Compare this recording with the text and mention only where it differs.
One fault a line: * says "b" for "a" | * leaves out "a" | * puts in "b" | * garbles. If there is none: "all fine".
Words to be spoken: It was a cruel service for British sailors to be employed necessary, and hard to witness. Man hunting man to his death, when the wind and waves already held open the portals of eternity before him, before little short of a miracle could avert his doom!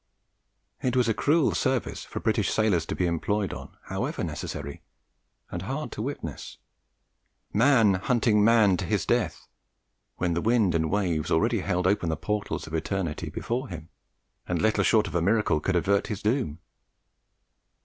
* puts in "on however"
* says "and" for "before"